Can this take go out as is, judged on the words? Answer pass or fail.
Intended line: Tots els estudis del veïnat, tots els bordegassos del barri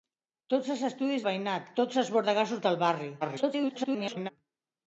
fail